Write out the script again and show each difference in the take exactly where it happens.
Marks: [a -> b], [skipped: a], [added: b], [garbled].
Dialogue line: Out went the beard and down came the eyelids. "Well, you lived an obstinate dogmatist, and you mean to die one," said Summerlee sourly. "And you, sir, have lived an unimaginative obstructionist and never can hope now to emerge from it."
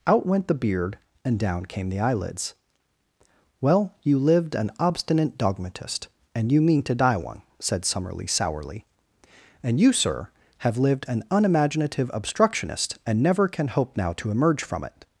Out went the beard and down came the eyelids. "Well, you lived an obstinate dogmatist, and you mean to die one," said Summerlee sourly. "And you, sir, have lived an unimaginative obstructionist and never can hope now to emerge from it."